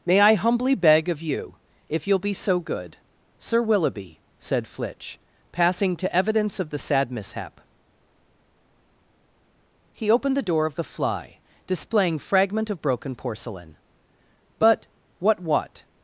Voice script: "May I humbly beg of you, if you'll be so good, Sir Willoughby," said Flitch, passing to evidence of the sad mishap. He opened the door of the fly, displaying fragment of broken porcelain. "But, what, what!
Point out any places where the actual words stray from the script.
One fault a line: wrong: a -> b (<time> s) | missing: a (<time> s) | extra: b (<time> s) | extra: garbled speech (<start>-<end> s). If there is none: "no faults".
no faults